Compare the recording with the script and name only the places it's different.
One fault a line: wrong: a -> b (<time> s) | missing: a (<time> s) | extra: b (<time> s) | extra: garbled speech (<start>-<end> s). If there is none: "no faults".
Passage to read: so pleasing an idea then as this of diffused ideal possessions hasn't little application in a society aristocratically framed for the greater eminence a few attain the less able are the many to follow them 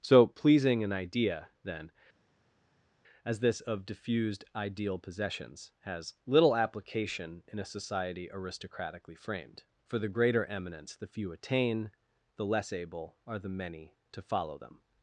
wrong: hasn't -> has (5.8 s)
wrong: a -> the (10.9 s)